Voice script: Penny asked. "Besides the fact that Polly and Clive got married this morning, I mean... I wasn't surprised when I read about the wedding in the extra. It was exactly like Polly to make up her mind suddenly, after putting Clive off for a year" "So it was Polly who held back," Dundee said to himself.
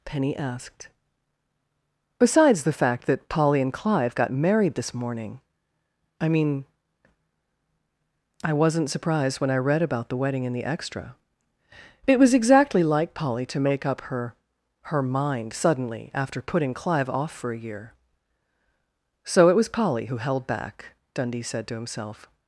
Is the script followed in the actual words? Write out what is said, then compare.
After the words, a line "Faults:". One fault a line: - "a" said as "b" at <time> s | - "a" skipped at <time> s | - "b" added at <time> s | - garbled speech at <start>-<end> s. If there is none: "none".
Penny asked. "Besides the fact that Polly and Clive got married this morning, I mean... I wasn't surprised when I read about the wedding in the extra. It was exactly like Polly to make up her her mind suddenly, after putting Clive off for a year" "So it was Polly who held back," Dundee said to himself.
Faults:
- "her" added at 14.8 s